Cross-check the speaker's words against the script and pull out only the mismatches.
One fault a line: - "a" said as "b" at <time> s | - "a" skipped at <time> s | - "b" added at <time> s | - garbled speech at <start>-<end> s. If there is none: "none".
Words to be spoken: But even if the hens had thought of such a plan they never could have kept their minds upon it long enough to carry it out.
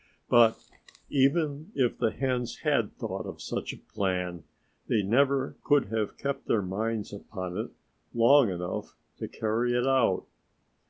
none